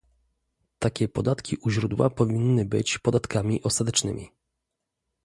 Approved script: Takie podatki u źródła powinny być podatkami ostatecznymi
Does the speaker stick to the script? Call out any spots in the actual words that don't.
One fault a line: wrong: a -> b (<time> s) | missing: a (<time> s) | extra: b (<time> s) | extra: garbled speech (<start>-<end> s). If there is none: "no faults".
no faults